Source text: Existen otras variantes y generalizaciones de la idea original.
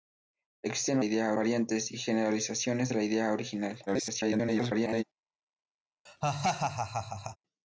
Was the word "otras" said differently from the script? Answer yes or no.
yes